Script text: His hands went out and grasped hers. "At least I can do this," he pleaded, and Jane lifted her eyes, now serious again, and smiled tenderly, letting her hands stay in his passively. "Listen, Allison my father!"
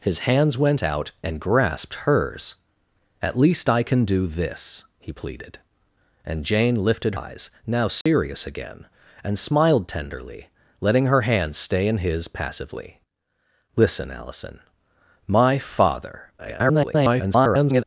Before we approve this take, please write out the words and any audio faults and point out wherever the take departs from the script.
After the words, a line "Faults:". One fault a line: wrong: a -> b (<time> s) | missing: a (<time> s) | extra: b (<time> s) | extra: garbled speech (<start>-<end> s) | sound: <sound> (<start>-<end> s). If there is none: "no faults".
His hands went out and grasped hers. "At least I can do this," he pleaded, and Jane lifted eyes, now serious again, and smiled tenderly, letting her hands stay in his passively. "Listen, Allison my father!" [garbled]
Faults:
missing: her (7.2 s)
sound: dropout (8.0-8.1 s)
extra: garbled speech (16.4-17.8 s)